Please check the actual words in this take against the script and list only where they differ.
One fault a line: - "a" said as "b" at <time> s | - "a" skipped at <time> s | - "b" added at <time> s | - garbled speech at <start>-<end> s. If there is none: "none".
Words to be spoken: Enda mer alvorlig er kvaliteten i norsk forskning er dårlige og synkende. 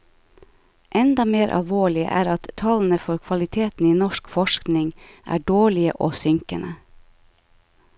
- "at tallene for" added at 2.3 s